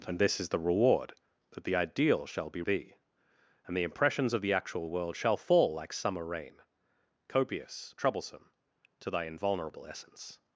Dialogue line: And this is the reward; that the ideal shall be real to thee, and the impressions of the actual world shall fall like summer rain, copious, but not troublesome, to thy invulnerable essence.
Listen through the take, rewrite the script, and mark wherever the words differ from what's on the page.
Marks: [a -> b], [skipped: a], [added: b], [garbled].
And this is the reward; that the ideal shall be [skipped: real to] thee, and the impressions of the actual world shall fall like summer rain, copious, [skipped: but not] troublesome, to thy invulnerable essence.